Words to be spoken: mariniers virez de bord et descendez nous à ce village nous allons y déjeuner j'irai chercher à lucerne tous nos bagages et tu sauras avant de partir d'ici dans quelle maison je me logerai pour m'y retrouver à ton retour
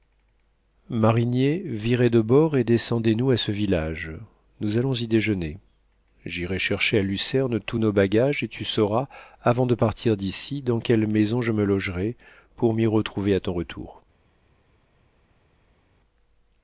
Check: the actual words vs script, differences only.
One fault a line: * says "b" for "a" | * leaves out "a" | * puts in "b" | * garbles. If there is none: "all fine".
all fine